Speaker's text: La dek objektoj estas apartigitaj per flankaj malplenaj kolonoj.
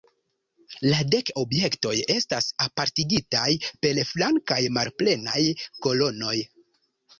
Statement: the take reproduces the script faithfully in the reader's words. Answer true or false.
true